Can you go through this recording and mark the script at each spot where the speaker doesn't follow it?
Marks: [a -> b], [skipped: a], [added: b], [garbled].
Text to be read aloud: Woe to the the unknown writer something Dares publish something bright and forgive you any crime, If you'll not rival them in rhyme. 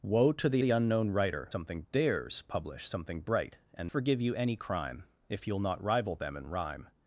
Woe to the the unknown writer something Dares publish something bright and forgive you any crime, If you'll not rival them in rhyme.